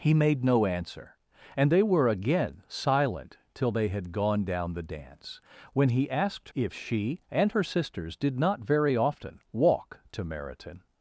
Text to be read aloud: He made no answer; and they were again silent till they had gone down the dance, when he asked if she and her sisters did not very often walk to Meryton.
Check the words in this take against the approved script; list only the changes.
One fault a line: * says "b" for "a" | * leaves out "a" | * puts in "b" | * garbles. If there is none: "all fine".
all fine